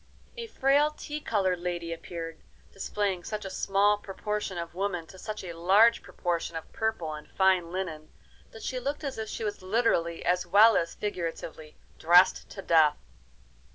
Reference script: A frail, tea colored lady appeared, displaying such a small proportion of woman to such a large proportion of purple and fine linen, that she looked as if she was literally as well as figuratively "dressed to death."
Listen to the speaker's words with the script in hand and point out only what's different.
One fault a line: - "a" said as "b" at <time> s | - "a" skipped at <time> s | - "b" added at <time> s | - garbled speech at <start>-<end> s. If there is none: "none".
none